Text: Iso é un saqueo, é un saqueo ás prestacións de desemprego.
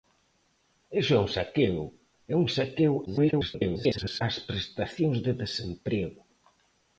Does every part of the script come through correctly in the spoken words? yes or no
no